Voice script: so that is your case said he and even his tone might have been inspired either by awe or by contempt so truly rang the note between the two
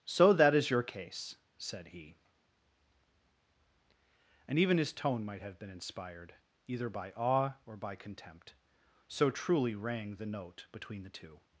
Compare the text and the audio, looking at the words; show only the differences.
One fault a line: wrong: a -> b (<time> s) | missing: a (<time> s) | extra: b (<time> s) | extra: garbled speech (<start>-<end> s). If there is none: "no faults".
no faults